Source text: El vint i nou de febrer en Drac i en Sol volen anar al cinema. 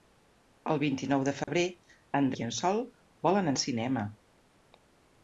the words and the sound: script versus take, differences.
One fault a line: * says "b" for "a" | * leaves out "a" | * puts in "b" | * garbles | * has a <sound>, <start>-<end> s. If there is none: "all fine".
* has a dropout, 1.4-1.5 s
* leaves out "Drac"
* leaves out "anar"